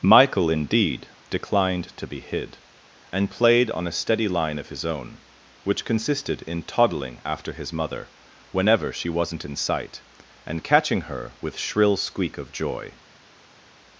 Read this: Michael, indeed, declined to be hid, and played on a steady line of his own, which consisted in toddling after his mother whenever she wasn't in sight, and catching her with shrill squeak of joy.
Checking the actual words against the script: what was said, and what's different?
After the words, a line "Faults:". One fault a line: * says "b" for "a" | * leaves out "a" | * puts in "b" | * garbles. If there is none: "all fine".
Michael, indeed, declined to be hid, and played on a steady line of his own, which consisted in toddling after his mother whenever she wasn't in sight, and catching her with shrill squeak of joy.
Faults:
all fine